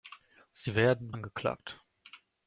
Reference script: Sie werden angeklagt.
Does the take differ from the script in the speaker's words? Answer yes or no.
no